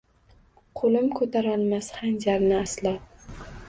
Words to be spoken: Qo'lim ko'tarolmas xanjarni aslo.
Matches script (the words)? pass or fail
pass